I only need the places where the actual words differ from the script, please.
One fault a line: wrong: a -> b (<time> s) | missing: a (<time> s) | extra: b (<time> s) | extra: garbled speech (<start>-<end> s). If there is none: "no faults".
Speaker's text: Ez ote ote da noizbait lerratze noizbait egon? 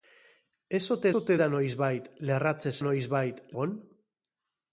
no faults